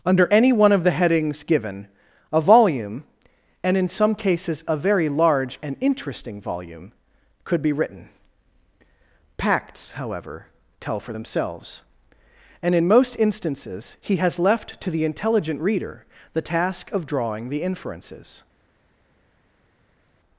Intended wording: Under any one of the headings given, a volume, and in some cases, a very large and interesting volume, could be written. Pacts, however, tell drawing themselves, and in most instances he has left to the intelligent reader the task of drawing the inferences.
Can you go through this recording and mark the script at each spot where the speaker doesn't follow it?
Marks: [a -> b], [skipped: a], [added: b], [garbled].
Under any one of the headings given, a volume, and in some cases, a very large and interesting volume, could be written. Pacts, however, tell [drawing -> for] themselves, and in most instances he has left to the intelligent reader the task of drawing the inferences.